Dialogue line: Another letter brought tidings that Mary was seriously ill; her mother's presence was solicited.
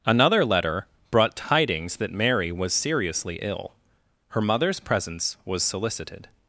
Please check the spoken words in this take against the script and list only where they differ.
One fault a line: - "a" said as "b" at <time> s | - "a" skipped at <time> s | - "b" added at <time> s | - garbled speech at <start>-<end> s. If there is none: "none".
none